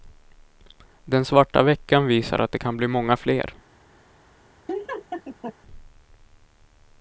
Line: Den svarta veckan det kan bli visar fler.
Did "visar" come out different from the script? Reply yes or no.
yes